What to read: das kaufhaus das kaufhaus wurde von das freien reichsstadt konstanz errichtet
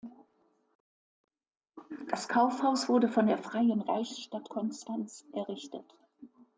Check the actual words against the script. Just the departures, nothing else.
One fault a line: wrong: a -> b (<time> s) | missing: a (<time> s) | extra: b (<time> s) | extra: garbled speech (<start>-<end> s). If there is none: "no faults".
missing: das kaufhaus (2.9 s)
wrong: das -> der (3.3 s)